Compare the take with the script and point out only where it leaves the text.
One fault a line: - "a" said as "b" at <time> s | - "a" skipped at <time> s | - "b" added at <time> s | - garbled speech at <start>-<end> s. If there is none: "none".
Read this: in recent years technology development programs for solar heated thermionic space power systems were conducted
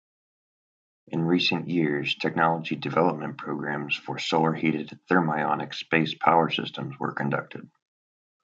none